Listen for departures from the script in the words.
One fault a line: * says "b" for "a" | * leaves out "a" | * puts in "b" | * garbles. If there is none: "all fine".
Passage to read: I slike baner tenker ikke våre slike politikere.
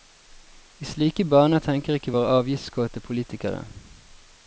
* says "avgiftskåte" for "slike"